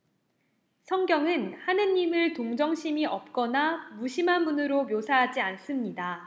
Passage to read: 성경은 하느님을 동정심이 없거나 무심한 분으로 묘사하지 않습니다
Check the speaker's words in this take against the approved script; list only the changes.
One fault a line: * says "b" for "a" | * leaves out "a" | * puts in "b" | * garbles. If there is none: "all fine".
all fine